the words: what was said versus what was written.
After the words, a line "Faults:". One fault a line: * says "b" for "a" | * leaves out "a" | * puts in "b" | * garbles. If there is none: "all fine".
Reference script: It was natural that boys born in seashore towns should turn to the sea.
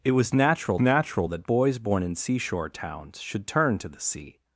It was natural natural that boys born in seashore towns should turn to the sea.
Faults:
* puts in "natural"